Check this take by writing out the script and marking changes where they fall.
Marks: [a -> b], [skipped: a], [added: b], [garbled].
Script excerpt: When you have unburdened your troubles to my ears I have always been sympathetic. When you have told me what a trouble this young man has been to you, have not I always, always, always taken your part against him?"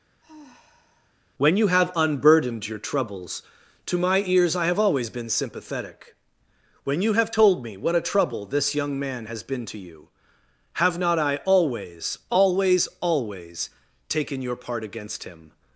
When you have unburdened your troubles to my ears I have always been sympathetic. When you have told me what a trouble this young man has been to you, have not I always, always, always taken your part against him?"